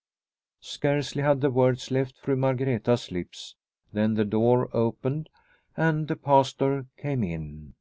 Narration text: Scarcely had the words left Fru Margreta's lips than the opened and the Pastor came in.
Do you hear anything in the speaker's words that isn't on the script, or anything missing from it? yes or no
yes